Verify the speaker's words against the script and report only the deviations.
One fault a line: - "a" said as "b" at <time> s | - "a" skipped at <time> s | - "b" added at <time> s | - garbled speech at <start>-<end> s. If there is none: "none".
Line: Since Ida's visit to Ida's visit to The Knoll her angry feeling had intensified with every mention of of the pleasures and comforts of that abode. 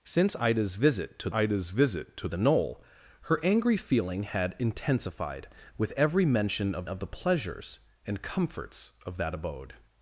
none